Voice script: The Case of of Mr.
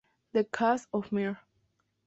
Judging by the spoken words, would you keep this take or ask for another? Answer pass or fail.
fail